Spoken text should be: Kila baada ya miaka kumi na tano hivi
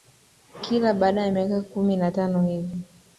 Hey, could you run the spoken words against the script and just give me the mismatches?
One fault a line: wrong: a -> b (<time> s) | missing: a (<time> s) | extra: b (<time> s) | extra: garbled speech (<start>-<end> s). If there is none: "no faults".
no faults